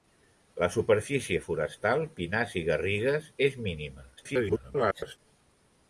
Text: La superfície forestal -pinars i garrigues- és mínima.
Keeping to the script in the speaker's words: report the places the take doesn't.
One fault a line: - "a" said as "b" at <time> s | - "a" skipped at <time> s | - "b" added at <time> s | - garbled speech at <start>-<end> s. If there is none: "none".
- garbled speech at 4.2-5.2 s